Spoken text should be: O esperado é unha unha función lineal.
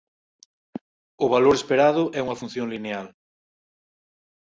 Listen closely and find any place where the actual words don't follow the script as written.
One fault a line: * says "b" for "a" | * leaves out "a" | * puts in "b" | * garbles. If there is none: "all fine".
* puts in "valor"
* leaves out "unha"